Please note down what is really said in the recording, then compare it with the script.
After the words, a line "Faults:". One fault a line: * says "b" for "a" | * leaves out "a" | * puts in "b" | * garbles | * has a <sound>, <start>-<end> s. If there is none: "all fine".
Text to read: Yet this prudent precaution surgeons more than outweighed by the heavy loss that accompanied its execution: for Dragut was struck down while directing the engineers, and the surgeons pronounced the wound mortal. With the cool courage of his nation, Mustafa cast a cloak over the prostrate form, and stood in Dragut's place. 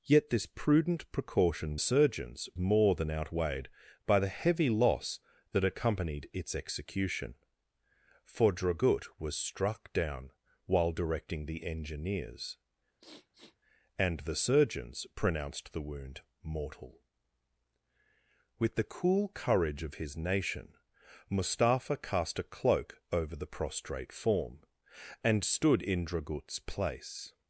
Yet this prudent precaution surgeons more than outweighed by the heavy loss that accompanied its execution: for Dragut was struck down while directing the engineers, and the surgeons pronounced the wound mortal. With the cool courage of his nation, Mustafa cast a cloak over the prostrate form, and stood in Dragut's place.
Faults:
* has a sniff, 13.0-13.6 s